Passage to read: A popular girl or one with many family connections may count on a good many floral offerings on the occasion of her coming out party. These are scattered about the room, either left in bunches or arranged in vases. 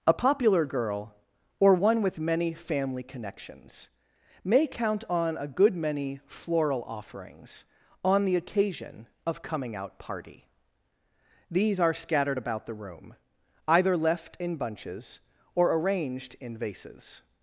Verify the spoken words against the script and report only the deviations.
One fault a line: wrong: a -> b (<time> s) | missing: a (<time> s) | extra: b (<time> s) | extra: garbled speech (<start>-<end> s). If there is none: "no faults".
missing: her (9.4 s)